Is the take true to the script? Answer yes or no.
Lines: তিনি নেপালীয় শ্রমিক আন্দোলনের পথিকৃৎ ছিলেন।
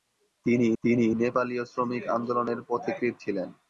no